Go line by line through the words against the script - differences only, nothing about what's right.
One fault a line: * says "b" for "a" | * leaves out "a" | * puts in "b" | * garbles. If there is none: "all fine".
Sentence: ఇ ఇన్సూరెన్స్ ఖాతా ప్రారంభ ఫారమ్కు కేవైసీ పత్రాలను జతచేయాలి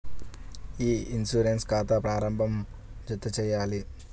* leaves out "ఫారమ్కు కేవైసీ పత్రాలను"